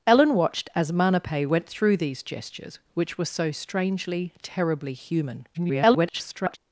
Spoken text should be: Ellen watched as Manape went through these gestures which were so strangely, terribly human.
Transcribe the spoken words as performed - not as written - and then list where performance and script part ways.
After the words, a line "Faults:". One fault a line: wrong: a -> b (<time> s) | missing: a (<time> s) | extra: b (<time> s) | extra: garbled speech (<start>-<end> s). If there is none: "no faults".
Ellen watched as Manape went through these gestures which were so strangely, terribly human. [garbled]
Faults:
extra: garbled speech (5.5-6.6 s)